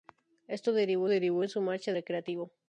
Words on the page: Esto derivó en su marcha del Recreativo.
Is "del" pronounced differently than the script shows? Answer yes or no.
yes